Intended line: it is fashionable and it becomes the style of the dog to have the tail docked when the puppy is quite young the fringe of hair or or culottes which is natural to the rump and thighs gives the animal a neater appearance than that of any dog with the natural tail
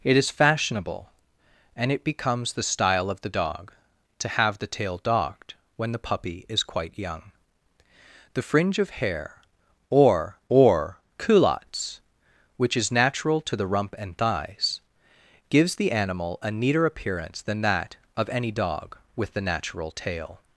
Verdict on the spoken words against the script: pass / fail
pass